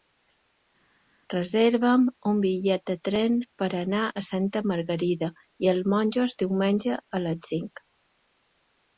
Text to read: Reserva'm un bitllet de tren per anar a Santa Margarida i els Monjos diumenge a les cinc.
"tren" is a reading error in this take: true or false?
false